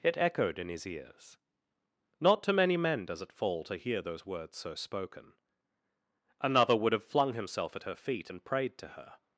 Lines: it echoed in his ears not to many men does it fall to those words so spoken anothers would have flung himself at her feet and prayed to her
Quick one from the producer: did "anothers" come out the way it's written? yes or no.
no